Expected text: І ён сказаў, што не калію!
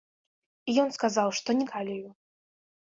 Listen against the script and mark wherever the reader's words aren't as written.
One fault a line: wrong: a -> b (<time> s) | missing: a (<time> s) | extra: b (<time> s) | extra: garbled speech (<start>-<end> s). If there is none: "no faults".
no faults